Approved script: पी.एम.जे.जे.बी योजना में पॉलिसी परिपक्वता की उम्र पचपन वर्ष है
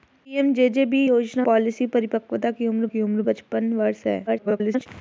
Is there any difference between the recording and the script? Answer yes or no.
yes